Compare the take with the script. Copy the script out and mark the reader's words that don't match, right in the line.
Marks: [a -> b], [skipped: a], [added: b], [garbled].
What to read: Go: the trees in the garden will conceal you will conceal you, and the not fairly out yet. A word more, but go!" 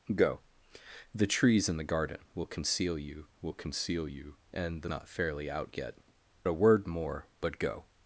Go: the trees in the garden will conceal you will conceal you, and the not fairly out yet. A word more, but go!"